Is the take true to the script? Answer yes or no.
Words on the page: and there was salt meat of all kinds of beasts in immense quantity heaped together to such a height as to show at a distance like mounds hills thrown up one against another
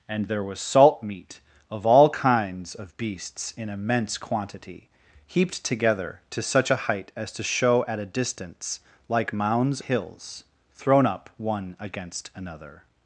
yes